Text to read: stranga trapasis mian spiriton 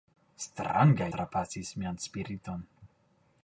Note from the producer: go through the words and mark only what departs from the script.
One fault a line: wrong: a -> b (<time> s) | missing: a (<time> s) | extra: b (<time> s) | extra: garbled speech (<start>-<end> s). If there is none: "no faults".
no faults